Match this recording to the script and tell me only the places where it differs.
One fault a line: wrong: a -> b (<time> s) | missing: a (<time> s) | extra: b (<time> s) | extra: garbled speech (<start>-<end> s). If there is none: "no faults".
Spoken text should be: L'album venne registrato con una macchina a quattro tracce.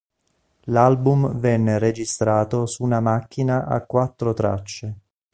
wrong: con -> su (2.6 s)